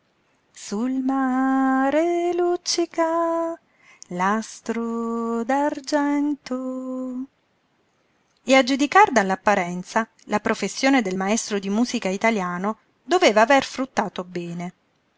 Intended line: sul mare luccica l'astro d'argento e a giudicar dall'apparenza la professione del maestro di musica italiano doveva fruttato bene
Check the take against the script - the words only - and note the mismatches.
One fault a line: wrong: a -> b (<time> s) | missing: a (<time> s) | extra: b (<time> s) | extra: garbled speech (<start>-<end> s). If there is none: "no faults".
extra: aver (13.4 s)